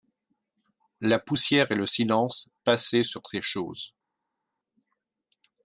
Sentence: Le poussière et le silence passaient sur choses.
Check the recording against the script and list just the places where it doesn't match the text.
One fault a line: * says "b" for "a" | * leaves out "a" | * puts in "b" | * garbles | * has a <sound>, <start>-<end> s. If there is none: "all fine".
* says "La" for "Le"
* puts in "ces"